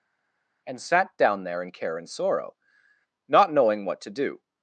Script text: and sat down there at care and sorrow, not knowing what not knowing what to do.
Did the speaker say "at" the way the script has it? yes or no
no